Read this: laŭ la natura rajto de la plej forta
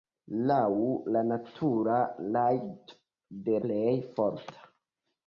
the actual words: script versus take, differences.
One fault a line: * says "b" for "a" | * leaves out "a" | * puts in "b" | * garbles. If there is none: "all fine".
* leaves out "la"